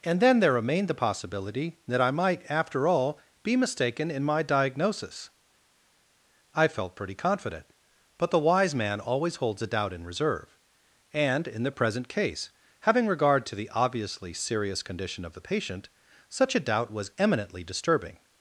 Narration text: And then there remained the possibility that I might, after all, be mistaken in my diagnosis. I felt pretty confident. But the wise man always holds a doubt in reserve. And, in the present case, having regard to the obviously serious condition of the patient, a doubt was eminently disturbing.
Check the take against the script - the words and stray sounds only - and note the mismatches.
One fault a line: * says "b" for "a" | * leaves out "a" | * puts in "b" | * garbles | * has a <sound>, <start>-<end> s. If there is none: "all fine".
* puts in "such"